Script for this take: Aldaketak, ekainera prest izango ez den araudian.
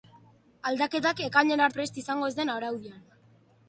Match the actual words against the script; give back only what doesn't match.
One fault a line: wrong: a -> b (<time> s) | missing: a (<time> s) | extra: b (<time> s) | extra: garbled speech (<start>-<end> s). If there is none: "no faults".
no faults